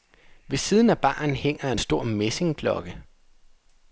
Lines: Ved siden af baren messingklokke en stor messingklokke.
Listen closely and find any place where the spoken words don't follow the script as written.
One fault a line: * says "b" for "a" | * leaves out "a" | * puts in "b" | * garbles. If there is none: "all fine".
* says "hænger" for "messingklokke"